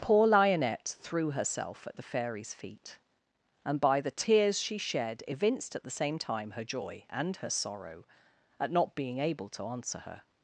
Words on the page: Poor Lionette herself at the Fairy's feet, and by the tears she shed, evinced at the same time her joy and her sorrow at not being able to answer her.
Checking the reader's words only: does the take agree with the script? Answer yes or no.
no